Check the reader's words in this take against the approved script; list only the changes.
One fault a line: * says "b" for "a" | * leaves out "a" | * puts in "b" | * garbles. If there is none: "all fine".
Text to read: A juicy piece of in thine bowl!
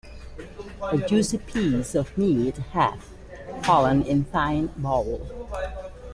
* puts in "meat hath fallen"